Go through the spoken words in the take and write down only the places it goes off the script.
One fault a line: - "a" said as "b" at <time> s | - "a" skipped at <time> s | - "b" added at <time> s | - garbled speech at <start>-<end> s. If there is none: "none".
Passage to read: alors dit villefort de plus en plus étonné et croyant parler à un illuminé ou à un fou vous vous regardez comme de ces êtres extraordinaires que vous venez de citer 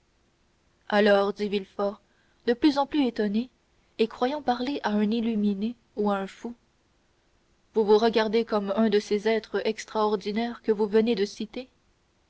- "un" added at 8.8 s